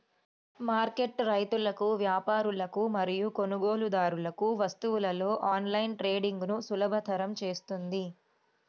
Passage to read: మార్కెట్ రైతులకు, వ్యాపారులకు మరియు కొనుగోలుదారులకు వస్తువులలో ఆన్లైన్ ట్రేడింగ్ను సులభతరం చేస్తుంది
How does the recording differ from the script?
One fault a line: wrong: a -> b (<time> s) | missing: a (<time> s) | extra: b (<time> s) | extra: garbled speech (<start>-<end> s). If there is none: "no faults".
no faults